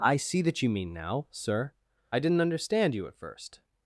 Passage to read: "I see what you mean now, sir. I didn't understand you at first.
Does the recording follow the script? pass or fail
fail